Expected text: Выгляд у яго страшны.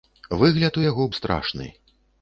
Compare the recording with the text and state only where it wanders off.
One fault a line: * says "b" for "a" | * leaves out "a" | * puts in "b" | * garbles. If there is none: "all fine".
all fine